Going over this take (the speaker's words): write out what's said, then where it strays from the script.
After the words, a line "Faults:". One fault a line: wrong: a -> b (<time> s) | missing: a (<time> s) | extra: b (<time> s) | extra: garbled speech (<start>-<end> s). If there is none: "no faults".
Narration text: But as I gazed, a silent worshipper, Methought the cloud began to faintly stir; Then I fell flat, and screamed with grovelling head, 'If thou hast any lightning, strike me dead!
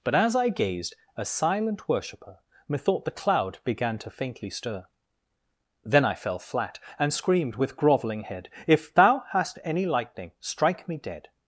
But as I gazed, a silent worshipper, Methought the cloud began to faintly stir; Then I fell flat, and screamed with grovelling head, 'If thou hast any lightning, strike me dead!
Faults:
no faults